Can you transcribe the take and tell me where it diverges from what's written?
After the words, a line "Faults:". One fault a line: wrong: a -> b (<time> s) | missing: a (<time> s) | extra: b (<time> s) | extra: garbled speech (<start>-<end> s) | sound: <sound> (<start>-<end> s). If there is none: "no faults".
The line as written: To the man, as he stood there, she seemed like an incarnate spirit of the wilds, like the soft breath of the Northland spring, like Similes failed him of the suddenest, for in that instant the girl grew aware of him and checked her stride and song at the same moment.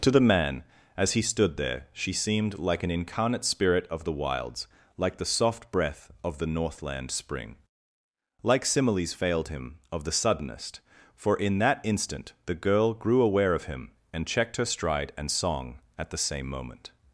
To the man, as he stood there, she seemed like an incarnate spirit of the wilds, like the soft breath of the Northland spring, like Similes failed him of the suddenest, for in that instant the girl grew aware of him and checked her stride and song at the same moment.
Faults:
no faults